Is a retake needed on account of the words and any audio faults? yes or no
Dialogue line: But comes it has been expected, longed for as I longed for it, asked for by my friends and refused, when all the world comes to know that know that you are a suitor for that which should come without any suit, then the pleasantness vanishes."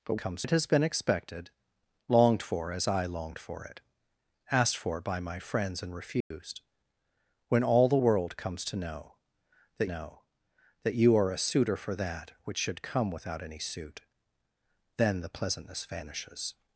yes